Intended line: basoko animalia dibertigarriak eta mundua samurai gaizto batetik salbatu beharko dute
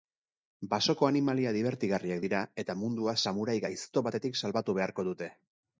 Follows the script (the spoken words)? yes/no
no